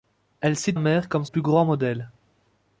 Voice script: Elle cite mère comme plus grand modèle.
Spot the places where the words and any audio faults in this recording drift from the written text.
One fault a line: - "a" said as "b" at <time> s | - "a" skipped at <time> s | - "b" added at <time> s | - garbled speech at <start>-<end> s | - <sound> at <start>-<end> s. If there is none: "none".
none